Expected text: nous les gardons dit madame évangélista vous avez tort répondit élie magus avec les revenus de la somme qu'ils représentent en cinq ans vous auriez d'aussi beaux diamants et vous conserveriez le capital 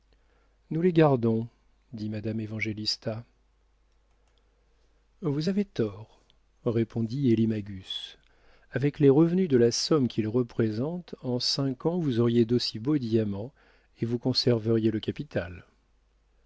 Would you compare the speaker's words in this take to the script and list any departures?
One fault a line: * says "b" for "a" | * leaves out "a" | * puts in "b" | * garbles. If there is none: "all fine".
all fine